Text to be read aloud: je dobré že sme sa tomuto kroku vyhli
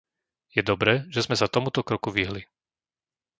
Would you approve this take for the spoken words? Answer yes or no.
yes